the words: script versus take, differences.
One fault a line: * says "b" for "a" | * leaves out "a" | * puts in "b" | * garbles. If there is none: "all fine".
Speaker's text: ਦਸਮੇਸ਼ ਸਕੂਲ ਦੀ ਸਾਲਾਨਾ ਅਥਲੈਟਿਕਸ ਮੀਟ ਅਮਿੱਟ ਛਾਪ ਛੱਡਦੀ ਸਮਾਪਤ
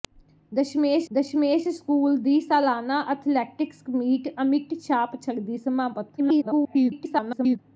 * puts in "ਦਸਮੇਸ਼"
* garbles